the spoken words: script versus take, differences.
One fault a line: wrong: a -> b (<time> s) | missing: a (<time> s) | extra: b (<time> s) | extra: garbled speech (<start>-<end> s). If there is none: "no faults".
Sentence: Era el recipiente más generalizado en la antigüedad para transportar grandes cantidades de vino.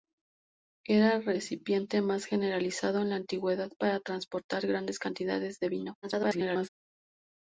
extra: garbled speech (6.0-6.7 s)